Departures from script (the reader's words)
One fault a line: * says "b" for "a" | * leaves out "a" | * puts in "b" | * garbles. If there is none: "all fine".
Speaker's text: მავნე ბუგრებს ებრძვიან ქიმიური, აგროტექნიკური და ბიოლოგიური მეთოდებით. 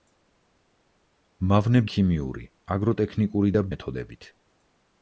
* leaves out "ბუგრებს ებრძვიან"
* leaves out "ბიოლოგიური"